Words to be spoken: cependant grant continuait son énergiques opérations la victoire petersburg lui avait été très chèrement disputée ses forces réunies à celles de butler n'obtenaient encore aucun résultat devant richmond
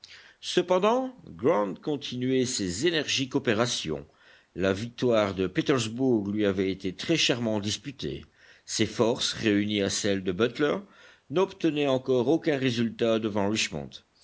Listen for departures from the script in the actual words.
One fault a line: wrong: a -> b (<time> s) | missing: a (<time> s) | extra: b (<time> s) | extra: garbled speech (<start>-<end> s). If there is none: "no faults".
wrong: son -> ses (2.5 s)
extra: de (5.3 s)